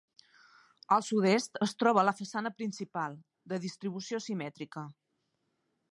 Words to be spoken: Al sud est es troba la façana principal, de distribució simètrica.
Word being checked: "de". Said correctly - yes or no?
yes